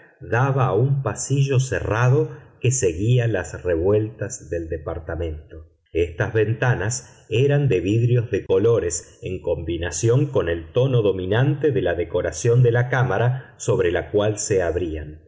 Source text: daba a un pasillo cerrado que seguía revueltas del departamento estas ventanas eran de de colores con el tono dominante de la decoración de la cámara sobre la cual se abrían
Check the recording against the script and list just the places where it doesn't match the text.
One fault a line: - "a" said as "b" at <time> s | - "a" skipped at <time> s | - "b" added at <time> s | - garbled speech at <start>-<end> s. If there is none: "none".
- "las" added at 3.3 s
- "vidrios" added at 7.8 s
- "en combinación" added at 9.2 s